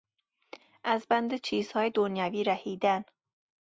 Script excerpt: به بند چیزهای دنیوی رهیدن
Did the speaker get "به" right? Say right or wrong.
wrong